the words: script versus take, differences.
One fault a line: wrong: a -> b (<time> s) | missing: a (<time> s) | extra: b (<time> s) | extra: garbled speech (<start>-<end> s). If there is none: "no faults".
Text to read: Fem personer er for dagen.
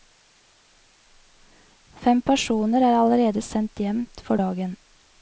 extra: allerede sendt hjem (3.0 s)